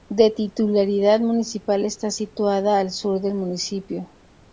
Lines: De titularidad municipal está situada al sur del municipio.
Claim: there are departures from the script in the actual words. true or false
false